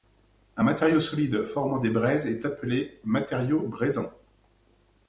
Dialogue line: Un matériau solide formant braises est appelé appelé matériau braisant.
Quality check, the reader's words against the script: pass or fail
fail